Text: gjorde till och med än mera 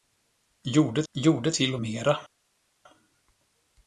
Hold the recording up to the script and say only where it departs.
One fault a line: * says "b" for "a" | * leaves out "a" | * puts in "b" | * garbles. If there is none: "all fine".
* puts in "gjorde"
* leaves out "med än"